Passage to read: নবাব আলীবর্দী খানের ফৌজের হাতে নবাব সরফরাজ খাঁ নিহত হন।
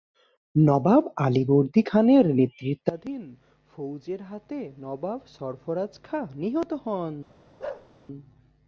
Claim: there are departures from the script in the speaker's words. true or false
true